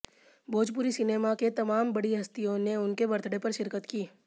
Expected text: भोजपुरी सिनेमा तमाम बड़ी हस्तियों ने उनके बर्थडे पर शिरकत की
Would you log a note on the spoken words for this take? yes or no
yes